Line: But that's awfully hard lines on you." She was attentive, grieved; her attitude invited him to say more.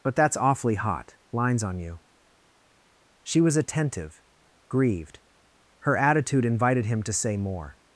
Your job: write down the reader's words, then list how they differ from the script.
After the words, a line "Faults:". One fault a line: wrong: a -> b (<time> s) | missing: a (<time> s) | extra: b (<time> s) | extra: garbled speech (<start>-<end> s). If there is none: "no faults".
But that's awfully hot lines on you." She was attentive, grieved; her attitude invited him to say more.
Faults:
wrong: hard -> hot (0.8 s)